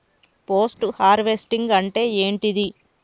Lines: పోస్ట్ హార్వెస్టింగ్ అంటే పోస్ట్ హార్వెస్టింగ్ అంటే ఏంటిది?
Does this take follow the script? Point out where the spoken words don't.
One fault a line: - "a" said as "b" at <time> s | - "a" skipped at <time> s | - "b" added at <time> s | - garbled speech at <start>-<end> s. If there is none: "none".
- "పోస్ట్ హార్వెస్టింగ్ అంటే" skipped at 2.0 s